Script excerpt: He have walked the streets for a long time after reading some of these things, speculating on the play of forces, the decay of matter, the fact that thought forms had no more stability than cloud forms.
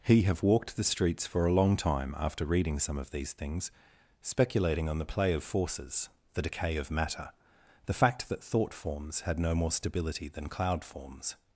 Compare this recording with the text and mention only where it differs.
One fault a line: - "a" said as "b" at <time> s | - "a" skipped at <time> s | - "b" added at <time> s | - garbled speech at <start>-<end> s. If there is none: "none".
none